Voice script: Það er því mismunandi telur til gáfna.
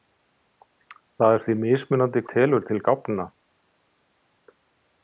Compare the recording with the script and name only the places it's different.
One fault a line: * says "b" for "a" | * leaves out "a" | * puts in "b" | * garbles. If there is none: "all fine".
all fine